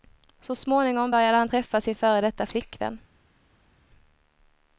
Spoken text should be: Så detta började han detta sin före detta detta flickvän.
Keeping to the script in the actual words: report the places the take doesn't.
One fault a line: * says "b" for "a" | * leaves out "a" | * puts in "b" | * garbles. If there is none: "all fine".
* says "småningom" for "detta"
* says "träffa" for "detta"
* leaves out "detta"